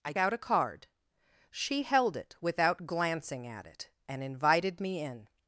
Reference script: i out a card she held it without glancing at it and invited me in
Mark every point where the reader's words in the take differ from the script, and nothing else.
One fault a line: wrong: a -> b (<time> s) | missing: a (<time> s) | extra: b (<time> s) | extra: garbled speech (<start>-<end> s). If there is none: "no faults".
no faults